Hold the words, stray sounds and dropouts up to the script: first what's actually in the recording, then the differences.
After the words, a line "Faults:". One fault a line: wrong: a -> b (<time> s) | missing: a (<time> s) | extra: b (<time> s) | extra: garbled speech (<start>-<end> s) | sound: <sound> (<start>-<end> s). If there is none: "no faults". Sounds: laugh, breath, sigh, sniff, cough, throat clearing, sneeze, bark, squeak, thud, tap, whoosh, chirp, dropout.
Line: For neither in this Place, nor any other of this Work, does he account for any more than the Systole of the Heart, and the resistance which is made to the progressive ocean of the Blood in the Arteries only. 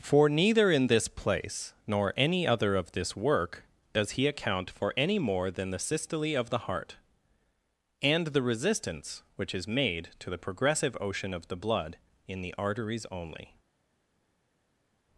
For neither in this Place, nor any other of this Work, does he account for any more than the Systole of the Heart, and the resistance which is made to the progressive ocean of the Blood in the Arteries only.
Faults:
no faults